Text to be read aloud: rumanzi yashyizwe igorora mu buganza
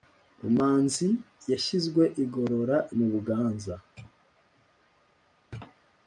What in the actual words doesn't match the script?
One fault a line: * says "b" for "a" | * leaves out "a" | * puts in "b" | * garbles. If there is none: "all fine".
all fine